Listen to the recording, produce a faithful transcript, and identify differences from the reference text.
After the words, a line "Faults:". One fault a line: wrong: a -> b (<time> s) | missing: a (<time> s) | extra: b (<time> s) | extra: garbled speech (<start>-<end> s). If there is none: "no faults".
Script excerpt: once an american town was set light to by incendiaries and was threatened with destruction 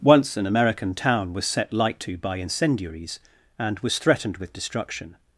once an american town was set light to by incendiaries and was threatened with destruction
Faults:
no faults